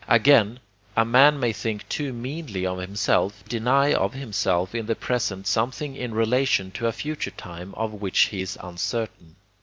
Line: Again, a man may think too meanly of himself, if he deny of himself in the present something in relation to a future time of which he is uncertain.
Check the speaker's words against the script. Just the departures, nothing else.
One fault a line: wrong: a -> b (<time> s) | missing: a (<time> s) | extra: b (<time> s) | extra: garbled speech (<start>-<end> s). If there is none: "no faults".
missing: if he (3.4 s)